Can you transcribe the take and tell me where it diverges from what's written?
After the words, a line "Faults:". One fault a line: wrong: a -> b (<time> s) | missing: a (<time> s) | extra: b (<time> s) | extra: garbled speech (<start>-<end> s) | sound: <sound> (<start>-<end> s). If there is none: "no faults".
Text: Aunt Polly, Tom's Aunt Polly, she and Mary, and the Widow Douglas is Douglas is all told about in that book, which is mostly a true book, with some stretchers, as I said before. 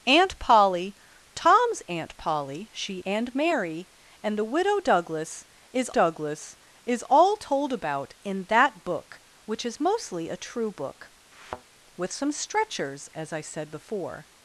Aunt Polly, Tom's Aunt Polly, she and Mary, and the Widow Douglas is Douglas is all told about in that book, which is mostly a true book, with some stretchers, as I said before.
Faults:
sound: thud (11.3-11.6 s)